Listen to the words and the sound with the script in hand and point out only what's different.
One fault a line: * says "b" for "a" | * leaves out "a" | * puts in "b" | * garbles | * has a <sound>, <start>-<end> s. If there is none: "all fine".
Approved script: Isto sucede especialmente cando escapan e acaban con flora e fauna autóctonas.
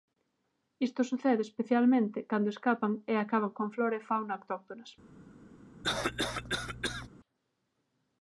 * has a cough, 5.8-7.1 s